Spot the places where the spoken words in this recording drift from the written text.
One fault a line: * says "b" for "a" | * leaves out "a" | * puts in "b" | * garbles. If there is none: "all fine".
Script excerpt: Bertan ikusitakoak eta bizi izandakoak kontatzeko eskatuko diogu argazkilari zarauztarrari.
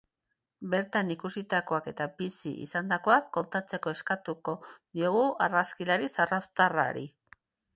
all fine